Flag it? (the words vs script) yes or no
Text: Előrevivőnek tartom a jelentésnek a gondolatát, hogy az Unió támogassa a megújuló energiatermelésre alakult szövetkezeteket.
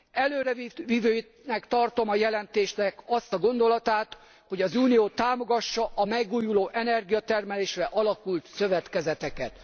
yes